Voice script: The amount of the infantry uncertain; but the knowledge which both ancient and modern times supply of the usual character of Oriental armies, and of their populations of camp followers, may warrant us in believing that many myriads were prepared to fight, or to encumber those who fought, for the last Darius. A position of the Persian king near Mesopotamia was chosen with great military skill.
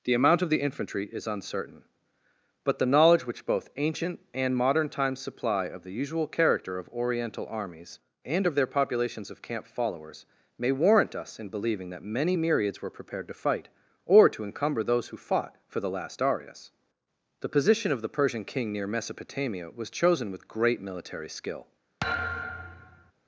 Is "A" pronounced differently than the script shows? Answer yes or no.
yes